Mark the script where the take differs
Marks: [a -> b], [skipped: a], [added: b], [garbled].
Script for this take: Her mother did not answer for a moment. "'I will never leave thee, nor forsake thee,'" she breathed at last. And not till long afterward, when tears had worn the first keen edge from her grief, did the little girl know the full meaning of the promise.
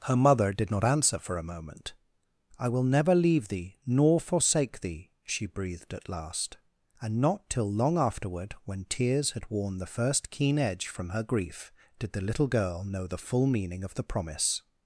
Her mother did not answer for a moment. "'I will never leave thee, nor forsake thee,'" she breathed at last. And not till long afterward, when tears had worn the first keen edge from her grief, did the little girl know the full meaning of the promise.